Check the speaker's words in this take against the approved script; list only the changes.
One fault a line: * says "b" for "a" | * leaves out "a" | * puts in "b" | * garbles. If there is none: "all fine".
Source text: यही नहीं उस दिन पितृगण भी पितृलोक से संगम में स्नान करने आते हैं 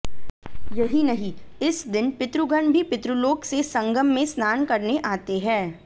* says "इस" for "उस"